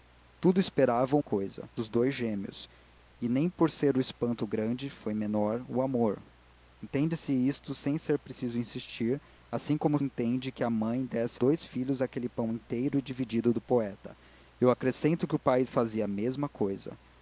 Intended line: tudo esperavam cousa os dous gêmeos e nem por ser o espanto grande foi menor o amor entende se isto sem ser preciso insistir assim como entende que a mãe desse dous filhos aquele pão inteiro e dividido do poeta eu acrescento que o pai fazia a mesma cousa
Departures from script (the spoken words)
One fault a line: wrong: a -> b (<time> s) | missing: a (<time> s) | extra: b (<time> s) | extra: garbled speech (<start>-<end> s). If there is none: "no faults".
no faults